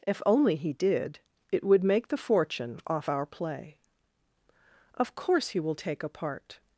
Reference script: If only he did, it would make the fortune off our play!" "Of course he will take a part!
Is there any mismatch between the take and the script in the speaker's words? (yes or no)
no